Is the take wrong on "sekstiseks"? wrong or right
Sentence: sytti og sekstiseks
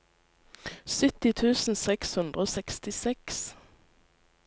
right